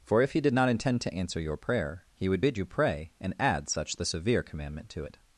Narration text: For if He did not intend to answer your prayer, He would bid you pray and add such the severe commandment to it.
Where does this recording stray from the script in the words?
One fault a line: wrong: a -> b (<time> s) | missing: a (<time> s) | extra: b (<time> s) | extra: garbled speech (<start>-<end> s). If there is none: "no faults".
no faults